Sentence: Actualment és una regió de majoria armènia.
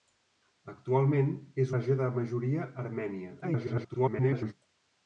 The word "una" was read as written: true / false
false